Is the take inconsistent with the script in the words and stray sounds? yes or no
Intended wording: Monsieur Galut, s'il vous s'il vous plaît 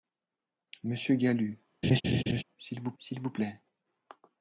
yes